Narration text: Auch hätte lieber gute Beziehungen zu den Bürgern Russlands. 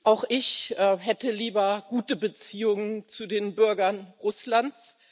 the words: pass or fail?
fail